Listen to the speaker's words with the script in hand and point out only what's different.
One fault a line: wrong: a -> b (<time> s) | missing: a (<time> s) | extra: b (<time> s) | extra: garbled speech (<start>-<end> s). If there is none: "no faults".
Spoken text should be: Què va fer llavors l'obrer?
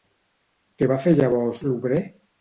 no faults